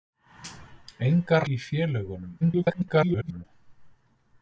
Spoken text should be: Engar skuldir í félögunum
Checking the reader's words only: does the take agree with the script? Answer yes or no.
no